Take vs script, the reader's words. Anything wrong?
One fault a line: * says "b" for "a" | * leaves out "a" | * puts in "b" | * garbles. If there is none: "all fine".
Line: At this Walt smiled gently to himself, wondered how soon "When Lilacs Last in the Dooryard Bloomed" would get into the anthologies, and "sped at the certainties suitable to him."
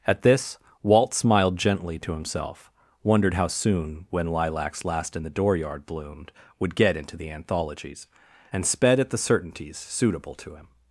all fine